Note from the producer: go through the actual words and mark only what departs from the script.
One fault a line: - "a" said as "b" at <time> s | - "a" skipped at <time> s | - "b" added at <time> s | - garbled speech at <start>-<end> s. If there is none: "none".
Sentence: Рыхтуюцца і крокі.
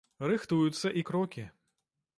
none